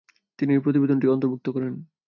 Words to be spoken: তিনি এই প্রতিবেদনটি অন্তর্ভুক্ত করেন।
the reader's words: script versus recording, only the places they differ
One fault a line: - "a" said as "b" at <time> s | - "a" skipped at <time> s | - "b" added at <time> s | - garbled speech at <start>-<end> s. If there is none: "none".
none